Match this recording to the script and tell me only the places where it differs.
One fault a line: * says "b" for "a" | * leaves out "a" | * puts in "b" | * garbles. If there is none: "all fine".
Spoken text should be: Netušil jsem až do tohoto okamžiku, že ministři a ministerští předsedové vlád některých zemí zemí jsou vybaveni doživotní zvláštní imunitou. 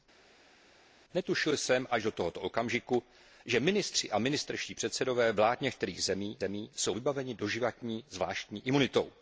all fine